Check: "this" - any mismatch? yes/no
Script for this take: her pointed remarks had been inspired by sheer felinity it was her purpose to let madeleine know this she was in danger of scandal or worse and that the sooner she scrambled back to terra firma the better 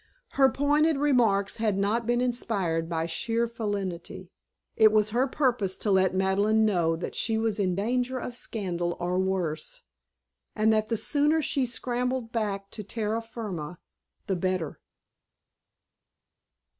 yes